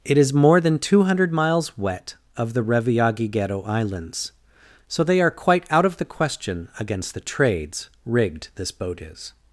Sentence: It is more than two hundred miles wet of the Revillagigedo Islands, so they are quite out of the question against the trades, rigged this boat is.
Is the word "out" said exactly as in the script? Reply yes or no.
yes